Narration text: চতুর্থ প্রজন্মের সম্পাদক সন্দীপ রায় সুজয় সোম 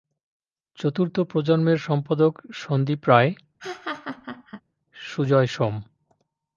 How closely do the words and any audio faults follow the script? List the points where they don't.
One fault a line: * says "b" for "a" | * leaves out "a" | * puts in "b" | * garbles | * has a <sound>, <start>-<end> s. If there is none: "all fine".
* has a laugh, 3.6-4.6 s